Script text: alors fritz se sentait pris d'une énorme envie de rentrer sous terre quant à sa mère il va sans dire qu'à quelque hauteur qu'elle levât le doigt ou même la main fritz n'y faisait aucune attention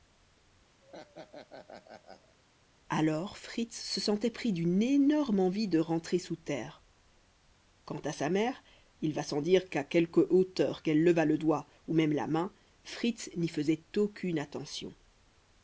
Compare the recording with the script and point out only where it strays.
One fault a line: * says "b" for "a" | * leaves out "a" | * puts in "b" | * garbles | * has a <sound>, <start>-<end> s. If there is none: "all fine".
* has a laugh, 0.8-2.4 s